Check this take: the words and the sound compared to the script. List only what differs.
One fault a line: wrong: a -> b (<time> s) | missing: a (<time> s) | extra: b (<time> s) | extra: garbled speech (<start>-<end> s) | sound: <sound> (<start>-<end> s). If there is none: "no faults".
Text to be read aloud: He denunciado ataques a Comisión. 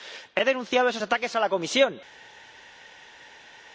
extra: esos (0.9 s)
extra: la (1.4 s)